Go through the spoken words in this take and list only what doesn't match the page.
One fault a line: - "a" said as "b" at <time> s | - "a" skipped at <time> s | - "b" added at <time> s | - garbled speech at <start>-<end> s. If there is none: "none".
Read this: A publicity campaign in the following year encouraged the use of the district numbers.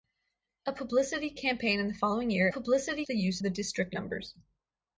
- "encouraged" said as "publicity" at 2.5 s
- "of" skipped at 3.4 s